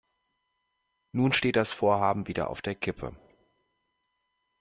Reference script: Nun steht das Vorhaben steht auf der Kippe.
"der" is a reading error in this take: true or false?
false